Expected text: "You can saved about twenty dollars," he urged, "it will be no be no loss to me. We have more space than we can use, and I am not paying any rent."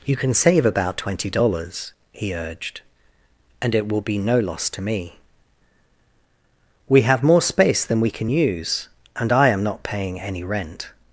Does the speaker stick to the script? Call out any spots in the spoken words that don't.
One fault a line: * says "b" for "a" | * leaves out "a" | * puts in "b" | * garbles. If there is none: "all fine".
* says "save" for "saved"
* puts in "and"
* leaves out "be no"